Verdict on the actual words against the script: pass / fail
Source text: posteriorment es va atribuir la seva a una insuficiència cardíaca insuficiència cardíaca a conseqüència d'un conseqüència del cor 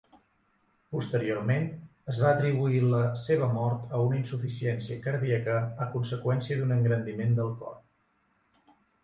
fail